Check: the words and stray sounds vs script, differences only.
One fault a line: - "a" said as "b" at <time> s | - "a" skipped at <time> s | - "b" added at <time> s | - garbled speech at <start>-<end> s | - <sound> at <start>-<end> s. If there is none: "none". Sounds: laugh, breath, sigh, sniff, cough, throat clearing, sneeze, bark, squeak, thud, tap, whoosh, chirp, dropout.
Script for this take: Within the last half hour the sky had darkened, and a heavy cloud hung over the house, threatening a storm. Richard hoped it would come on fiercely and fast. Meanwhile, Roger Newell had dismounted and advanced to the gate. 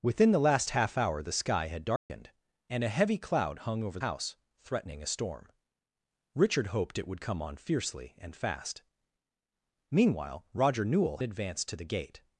- dropout at 2.0-2.1 s
- "the" skipped at 4.0 s
- "had dismounted and" skipped at 11.2 s